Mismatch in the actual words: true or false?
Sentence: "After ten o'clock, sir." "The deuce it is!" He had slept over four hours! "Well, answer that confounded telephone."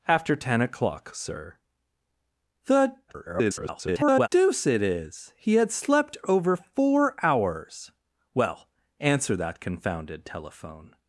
true